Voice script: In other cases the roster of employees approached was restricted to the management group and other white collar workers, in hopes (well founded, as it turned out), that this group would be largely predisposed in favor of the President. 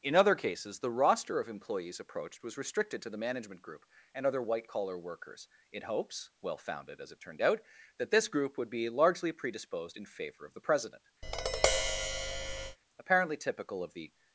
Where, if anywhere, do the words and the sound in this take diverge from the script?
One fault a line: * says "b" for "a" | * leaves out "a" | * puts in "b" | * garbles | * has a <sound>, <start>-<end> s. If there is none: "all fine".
* has a tap, 11.2-12.8 s
* puts in "Apparently typical of the"